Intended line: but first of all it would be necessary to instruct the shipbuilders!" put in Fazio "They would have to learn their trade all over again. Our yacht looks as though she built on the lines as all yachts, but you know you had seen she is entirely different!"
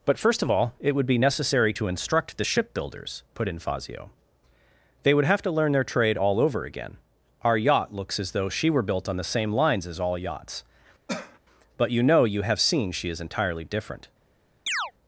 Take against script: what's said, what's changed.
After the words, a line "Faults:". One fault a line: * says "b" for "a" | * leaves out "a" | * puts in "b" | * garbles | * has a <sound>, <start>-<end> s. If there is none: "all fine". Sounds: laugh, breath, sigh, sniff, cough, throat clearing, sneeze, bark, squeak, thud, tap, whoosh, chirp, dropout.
but first of all it would be necessary to instruct the shipbuilders!" put in Fazio "They would have to learn their trade all over again. Our yacht looks as though she were built on the same lines as all yachts, but you know you have seen she is entirely different!"
Faults:
* puts in "were"
* puts in "same"
* has a cough, 11.1-11.4 s
* says "have" for "had"
* has a chirp, 14.7-14.9 s